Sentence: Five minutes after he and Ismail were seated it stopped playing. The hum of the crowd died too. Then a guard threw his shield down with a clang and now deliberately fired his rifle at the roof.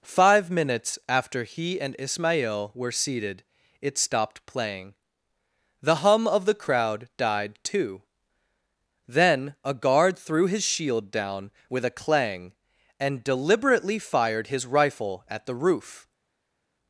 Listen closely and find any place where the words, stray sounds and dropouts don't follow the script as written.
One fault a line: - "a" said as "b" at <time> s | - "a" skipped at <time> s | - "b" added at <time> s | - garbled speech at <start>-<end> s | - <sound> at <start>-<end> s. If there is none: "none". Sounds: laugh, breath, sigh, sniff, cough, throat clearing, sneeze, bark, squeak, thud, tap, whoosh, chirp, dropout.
- "now" skipped at 13.2 s